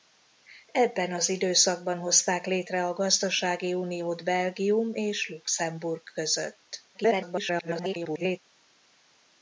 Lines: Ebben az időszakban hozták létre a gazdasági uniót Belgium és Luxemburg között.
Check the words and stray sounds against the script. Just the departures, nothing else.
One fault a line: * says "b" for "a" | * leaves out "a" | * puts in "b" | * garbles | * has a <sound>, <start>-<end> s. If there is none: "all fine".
* garbles